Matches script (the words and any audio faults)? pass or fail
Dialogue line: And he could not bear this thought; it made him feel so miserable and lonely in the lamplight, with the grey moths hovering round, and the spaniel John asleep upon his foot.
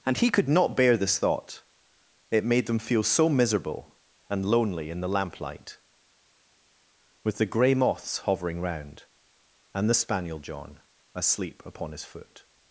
fail